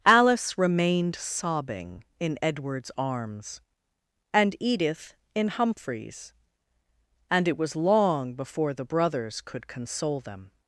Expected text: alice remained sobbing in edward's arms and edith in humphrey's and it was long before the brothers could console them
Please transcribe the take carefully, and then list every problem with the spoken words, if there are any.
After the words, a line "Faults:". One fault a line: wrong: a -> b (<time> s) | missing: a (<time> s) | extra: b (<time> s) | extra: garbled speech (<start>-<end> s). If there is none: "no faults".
alice remained sobbing in edward's arms and edith in humphrey's and it was long before the brothers could console them
Faults:
no faults